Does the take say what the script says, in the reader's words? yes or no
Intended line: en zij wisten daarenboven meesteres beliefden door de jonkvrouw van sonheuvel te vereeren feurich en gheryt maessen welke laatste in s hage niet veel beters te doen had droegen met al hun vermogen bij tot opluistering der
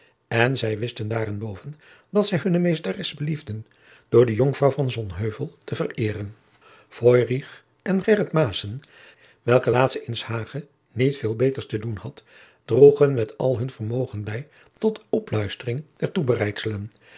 no